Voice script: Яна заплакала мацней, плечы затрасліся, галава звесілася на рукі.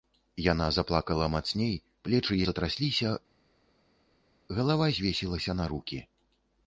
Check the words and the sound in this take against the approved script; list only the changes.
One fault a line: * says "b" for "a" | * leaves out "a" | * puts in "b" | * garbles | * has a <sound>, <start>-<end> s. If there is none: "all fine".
all fine